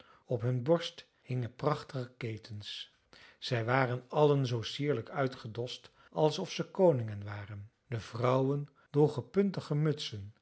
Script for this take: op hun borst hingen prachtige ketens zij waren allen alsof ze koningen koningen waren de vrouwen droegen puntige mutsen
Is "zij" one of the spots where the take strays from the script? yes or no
no